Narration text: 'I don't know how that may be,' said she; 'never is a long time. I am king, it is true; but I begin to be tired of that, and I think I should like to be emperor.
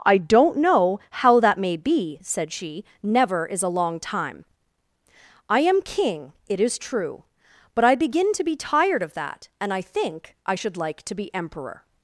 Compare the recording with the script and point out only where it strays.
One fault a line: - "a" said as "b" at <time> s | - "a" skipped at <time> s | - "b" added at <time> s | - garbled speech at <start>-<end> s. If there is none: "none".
none